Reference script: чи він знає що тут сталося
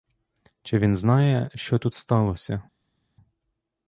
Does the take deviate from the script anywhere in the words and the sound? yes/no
no